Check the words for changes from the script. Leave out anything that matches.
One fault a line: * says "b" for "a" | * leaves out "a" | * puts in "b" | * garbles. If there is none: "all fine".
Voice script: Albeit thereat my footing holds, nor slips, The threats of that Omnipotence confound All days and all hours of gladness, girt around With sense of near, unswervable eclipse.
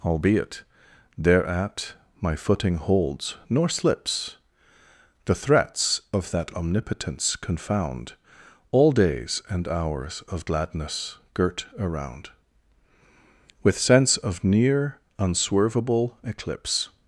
* leaves out "all"